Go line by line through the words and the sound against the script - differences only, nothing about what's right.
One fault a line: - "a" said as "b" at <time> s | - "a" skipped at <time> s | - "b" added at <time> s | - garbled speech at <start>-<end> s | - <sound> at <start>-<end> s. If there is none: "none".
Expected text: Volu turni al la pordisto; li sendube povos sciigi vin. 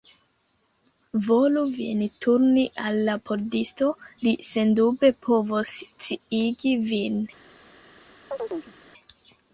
- "vin" added at 1.8 s
- chirp at 8.3-8.7 s